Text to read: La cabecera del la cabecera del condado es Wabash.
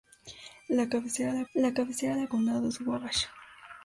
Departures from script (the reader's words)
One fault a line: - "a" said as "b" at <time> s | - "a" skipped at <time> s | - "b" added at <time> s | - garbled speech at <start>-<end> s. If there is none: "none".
none